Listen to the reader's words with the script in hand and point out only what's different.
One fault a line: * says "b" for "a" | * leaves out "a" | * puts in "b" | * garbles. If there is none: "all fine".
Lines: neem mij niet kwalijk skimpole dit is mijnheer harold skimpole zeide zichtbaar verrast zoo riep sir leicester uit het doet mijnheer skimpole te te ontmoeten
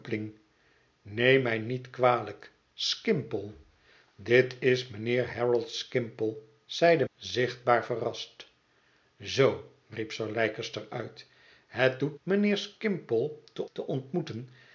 all fine